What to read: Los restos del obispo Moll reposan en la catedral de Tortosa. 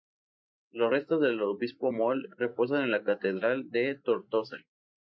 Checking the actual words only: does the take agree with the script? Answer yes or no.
yes